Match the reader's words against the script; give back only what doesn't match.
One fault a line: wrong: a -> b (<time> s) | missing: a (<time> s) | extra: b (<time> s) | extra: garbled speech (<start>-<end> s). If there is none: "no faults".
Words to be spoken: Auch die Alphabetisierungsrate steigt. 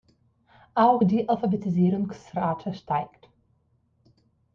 no faults